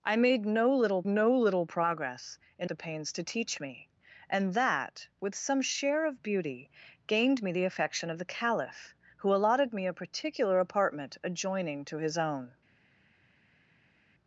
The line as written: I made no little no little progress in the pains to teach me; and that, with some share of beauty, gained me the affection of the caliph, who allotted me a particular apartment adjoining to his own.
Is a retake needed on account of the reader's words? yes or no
no